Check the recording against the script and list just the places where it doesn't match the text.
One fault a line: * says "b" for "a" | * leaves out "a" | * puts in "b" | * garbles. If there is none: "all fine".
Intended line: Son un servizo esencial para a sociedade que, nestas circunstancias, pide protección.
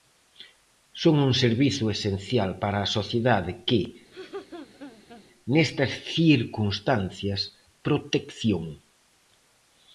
* leaves out "pide"